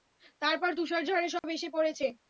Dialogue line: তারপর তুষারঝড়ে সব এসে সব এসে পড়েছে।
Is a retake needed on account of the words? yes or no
yes